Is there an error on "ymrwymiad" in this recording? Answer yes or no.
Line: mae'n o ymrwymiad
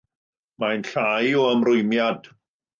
no